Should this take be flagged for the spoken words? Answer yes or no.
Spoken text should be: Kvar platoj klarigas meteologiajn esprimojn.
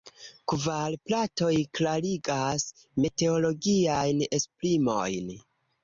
no